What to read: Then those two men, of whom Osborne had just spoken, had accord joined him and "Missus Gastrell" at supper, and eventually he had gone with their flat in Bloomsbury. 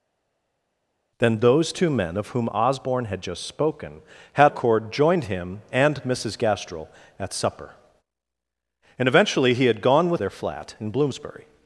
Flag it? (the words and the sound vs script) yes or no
no